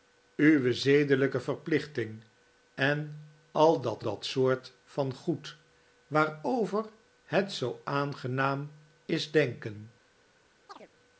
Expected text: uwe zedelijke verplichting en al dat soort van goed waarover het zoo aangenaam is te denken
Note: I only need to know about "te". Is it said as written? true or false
false